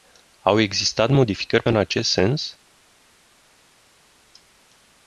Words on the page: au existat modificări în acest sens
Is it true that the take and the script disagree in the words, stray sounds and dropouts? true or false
false